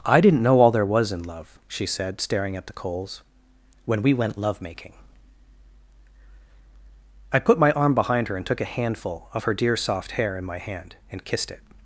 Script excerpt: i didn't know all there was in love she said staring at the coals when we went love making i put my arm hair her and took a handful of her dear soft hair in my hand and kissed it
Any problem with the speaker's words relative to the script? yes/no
yes